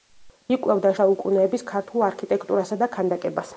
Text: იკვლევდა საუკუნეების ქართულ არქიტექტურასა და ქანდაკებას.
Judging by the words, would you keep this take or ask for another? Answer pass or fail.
pass